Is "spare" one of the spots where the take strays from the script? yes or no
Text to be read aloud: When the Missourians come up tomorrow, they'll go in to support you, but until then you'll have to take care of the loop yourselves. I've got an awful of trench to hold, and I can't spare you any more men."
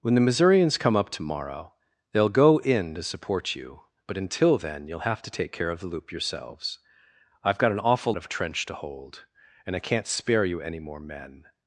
no